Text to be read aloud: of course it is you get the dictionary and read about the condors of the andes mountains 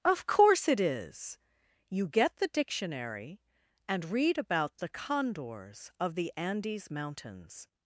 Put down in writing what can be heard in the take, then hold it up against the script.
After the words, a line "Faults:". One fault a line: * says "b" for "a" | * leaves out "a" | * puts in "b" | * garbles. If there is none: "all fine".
of course it is you get the dictionary and read about the condors of the andes mountains
Faults:
all fine